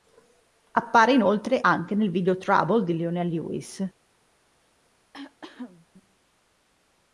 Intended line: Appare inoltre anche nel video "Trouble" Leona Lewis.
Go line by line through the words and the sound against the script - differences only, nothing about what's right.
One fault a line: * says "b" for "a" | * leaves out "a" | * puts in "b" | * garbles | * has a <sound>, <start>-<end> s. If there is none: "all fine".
* puts in "di"
* has a cough, 5.1-5.9 s